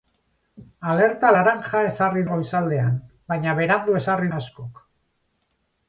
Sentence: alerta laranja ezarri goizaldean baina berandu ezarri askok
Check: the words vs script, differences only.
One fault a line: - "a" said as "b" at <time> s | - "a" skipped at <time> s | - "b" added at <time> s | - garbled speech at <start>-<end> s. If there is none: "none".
none